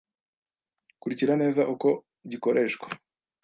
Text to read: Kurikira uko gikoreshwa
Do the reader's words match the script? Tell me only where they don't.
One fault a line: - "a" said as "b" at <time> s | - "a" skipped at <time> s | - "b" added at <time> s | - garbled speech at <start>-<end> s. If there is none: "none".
- "neza" added at 1.4 s